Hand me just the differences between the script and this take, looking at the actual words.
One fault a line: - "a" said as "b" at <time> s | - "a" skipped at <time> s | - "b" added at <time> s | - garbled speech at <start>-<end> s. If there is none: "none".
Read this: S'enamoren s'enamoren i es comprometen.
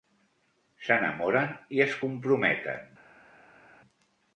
- "s'enamoren" skipped at 1.5 s